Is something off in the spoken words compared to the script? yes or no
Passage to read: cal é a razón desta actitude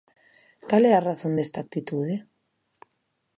no